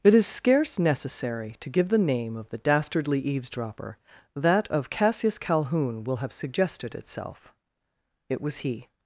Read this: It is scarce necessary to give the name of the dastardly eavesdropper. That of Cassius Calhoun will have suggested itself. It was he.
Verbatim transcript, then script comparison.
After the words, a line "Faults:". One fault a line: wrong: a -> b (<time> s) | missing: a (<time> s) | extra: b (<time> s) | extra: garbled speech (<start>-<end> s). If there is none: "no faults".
It is scarce necessary to give the name of the dastardly eavesdropper. That of Cassius Calhoun will have suggested itself. It was he.
Faults:
no faults